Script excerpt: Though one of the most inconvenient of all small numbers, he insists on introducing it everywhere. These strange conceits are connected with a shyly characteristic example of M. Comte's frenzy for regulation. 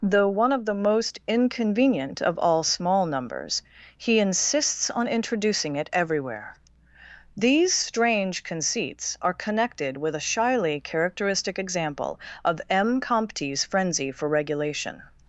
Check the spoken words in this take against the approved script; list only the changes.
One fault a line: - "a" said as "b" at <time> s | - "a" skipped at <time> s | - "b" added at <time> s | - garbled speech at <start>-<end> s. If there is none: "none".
none